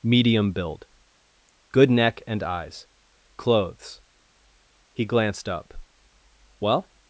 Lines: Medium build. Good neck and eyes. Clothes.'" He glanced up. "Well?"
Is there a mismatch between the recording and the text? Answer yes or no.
no